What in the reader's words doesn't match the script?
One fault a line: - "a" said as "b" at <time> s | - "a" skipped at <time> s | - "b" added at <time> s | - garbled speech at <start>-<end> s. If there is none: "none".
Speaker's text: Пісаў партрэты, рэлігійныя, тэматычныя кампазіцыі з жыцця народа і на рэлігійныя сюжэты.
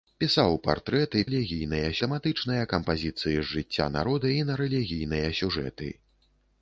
none